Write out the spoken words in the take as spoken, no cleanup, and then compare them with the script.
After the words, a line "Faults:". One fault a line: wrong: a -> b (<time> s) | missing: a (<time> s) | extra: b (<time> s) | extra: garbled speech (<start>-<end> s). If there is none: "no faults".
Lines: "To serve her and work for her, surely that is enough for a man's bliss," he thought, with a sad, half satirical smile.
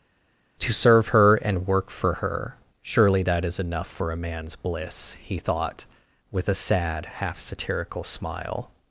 "To serve her and work for her, surely that is enough for a man's bliss," he thought, with a sad, half satirical smile.
Faults:
no faults